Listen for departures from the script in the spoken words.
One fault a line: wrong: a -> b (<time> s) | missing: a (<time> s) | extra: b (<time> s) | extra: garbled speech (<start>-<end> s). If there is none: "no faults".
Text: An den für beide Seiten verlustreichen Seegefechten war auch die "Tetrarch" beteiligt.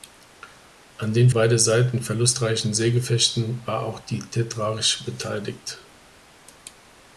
missing: für (1.3 s)